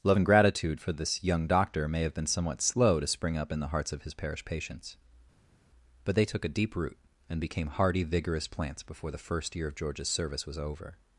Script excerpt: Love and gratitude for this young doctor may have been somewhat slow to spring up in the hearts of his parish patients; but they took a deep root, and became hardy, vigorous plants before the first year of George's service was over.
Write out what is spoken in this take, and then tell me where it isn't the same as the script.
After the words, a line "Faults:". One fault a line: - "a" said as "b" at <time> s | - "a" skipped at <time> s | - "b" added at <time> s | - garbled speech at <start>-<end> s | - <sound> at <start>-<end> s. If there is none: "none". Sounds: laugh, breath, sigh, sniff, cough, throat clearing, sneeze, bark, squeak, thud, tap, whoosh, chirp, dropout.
Love and gratitude for this young doctor may have been somewhat slow to spring up in the hearts of his parish patients; but they took a deep root, and became hardy, vigorous plants before the first year of George's service was over.
Faults:
none